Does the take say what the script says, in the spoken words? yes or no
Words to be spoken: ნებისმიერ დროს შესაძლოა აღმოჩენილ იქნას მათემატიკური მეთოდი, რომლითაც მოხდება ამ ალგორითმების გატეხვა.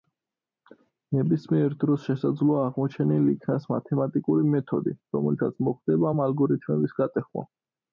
yes